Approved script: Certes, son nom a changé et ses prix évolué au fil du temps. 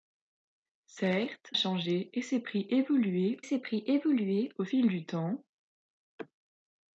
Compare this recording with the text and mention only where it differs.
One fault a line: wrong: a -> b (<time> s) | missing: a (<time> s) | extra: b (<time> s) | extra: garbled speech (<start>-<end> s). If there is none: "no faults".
wrong: son nom a changé et -> changé et ses prix évolué (1.5 s)